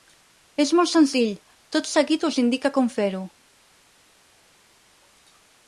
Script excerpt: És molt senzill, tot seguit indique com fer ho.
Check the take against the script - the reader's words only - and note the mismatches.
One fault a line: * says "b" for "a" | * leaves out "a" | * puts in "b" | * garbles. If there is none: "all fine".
* puts in "us"